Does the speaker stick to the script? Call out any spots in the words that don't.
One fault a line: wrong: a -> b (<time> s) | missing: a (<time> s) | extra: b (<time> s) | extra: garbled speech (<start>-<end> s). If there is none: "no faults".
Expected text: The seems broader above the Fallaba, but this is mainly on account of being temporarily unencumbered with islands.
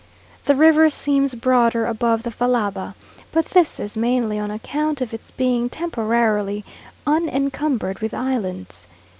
extra: river (0.6 s)
extra: its (5.1 s)